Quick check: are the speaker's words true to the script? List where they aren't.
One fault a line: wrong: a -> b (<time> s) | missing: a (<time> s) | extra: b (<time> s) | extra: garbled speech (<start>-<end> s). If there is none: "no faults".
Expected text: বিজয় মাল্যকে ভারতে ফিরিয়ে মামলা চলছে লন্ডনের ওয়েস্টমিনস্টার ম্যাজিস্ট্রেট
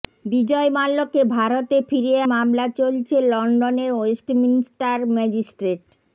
no faults